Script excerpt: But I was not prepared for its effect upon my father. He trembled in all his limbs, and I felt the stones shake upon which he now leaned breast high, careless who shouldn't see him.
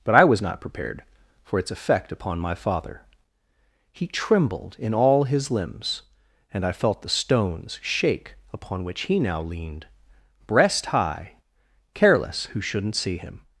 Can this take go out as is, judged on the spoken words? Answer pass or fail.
pass